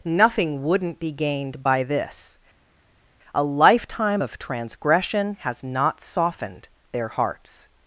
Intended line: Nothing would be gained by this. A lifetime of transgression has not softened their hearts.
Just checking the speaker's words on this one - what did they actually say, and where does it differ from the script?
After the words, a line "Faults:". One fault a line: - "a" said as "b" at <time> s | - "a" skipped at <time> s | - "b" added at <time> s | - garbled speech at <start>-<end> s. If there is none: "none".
Nothing wouldn't be gained by this. A lifetime of transgression has not softened their hearts.
Faults:
- "would" said as "wouldn't" at 0.6 s